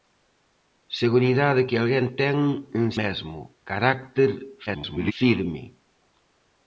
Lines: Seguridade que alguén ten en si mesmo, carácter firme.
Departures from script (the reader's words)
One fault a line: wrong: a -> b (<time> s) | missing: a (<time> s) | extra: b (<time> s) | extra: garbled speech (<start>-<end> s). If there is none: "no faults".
missing: si (2.9 s)
extra: garbled speech (4.7-5.1 s)